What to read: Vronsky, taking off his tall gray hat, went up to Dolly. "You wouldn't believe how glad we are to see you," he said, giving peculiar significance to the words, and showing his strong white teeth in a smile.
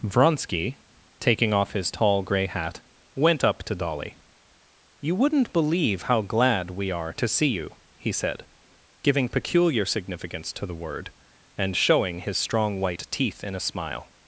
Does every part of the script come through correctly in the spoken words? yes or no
no